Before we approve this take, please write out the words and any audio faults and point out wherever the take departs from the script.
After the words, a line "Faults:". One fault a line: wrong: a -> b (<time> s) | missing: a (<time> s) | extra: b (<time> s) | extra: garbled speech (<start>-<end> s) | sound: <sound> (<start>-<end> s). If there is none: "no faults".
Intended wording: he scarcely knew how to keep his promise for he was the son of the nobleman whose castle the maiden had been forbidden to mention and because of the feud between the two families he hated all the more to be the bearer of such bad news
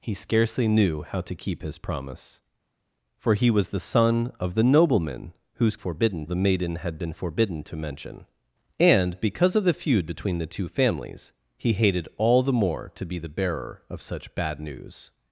he scarcely knew how to keep his promise for he was the son of the nobleman whose forbidden the maiden had been forbidden to mention and because of the feud between the two families he hated all the more to be the bearer of such bad news
Faults:
wrong: castle -> forbidden (5.7 s)